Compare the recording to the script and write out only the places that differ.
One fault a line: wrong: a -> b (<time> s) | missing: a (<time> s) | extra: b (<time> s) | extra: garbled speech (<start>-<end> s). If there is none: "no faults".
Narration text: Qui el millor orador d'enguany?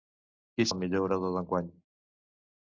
no faults